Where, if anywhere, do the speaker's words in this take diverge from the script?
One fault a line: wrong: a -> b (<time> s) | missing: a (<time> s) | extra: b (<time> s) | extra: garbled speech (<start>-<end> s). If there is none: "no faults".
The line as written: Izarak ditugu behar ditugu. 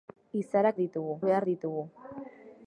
no faults